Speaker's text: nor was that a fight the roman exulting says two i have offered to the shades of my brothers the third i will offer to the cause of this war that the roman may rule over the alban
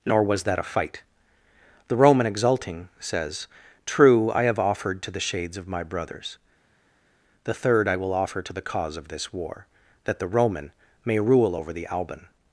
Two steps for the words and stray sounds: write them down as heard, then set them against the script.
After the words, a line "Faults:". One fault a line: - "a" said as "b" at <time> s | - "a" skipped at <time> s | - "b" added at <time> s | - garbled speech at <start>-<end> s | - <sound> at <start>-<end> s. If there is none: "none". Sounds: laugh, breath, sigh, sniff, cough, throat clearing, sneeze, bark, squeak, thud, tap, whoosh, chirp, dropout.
nor was that a fight the roman exulting says true i have offered to the shades of my brothers the third i will offer to the cause of this war that the roman may rule over the alban
Faults:
- "two" said as "true" at 3.9 s